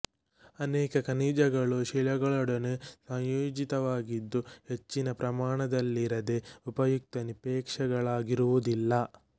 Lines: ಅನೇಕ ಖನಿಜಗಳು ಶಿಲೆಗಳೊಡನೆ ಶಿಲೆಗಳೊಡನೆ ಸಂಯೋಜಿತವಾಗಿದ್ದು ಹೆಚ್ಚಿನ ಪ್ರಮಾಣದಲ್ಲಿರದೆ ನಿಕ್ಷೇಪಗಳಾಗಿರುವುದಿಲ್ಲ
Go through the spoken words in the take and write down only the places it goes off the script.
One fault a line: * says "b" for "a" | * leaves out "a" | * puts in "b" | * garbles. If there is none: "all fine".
* leaves out "ಶಿಲೆಗಳೊಡನೆ"
* puts in "ಉಪಯುಕ್ತ"